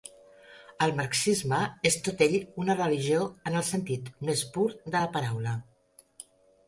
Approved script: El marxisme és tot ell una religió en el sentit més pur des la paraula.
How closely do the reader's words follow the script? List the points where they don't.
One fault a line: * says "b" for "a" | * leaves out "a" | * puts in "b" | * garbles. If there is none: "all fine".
* says "de" for "des"